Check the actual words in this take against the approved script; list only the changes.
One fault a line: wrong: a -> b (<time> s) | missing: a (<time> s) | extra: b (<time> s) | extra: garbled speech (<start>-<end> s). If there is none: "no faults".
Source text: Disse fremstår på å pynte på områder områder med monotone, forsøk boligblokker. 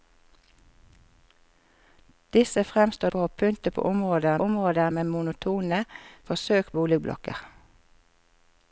no faults